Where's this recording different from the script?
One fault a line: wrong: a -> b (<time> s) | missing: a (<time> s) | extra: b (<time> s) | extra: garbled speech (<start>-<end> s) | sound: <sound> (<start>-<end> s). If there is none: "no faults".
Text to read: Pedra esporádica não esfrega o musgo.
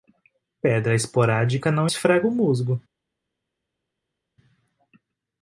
no faults